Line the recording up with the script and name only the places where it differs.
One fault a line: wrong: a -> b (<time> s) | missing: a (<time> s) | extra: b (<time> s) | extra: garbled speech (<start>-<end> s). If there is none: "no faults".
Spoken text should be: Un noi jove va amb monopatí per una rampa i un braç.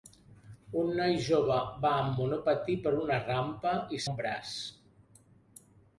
no faults